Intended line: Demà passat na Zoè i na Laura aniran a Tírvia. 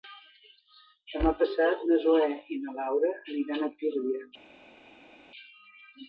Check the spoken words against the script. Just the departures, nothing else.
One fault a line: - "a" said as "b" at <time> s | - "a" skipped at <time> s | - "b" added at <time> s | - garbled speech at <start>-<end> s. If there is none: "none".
none